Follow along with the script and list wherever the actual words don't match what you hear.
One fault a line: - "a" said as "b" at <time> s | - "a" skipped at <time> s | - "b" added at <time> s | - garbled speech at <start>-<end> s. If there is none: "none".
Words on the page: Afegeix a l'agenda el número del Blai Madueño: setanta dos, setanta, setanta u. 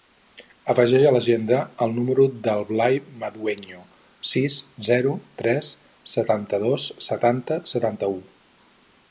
- "sis zero tres" added at 4.3 s